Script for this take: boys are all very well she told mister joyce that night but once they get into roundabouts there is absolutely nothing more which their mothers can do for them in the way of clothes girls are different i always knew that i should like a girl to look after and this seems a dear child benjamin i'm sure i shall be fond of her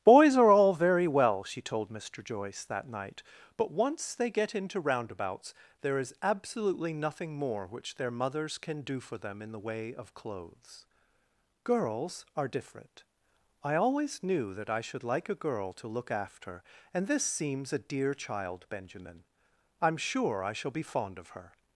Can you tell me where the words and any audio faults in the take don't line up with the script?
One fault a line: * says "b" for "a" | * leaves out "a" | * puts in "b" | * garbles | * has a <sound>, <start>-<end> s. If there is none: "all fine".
all fine